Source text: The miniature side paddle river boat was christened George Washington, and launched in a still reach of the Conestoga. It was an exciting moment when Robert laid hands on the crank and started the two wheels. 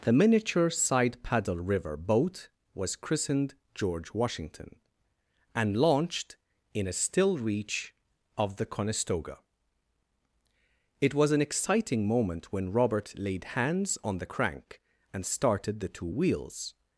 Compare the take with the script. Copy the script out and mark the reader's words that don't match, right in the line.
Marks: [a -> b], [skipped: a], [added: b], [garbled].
The miniature side paddle river boat was christened George Washington, and launched in a still reach of the Conestoga. It was an exciting moment when Robert laid hands on the crank and started the two wheels.